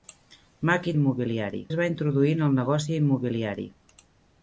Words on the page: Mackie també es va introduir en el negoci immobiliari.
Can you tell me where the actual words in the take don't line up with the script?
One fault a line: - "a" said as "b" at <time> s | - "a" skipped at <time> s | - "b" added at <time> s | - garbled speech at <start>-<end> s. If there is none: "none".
- "també" said as "immobiliari" at 1.0 s